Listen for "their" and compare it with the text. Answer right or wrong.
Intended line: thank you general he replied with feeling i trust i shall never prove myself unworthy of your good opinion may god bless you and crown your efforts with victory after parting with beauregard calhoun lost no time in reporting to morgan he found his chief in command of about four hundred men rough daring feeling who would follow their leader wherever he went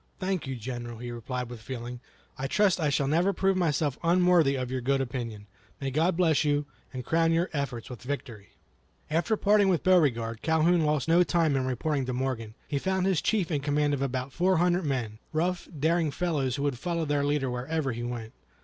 right